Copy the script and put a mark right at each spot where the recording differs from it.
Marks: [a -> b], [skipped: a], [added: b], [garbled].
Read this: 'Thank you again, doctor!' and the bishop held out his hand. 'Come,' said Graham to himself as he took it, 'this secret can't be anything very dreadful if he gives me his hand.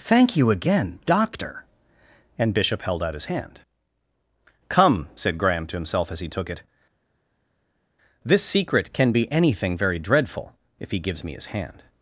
'Thank you again, doctor!' and [skipped: the] bishop held out his hand. 'Come,' said Graham to himself as he took it, 'this secret [can't -> can] be anything very dreadful if he gives me his hand.